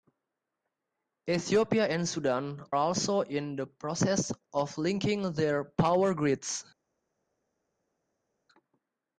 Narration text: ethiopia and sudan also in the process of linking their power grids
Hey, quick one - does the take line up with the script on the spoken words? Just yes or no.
yes